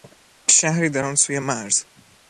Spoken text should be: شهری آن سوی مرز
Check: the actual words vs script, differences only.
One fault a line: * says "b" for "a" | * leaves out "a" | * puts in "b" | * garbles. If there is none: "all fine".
* puts in "در"